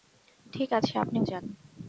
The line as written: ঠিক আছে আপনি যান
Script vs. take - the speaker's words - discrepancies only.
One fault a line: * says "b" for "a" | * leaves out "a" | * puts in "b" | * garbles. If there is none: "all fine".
all fine